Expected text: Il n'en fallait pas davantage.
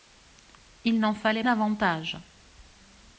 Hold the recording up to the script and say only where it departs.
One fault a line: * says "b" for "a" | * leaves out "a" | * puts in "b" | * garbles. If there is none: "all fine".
* leaves out "pas"